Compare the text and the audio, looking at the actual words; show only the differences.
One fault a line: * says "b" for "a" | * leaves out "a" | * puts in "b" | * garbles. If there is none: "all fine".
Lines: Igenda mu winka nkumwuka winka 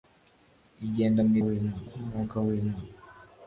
all fine